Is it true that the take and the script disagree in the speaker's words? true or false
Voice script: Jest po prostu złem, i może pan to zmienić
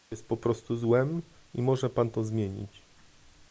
false